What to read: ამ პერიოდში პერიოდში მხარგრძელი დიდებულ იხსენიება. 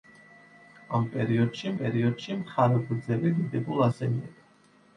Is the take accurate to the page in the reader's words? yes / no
yes